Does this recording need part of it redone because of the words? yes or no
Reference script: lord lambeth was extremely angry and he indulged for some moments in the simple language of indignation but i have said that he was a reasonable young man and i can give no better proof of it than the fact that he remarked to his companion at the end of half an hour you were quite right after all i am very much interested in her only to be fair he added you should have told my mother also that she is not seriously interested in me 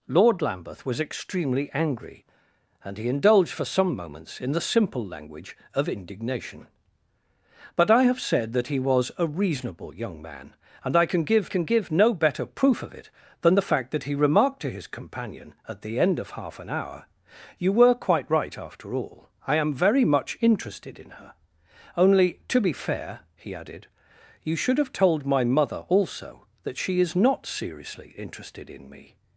yes